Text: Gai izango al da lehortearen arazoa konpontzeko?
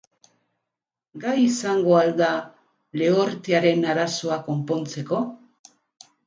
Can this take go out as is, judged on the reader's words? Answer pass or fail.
pass